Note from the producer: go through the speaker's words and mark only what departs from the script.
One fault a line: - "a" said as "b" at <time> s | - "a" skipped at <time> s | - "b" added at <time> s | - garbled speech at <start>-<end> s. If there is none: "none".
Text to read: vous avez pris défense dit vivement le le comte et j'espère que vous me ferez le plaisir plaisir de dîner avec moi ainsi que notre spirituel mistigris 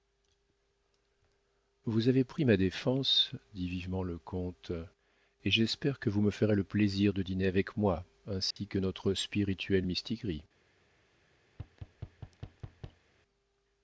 - "ma" added at 2.4 s
- "le" skipped at 4.2 s
- "plaisir" skipped at 7.1 s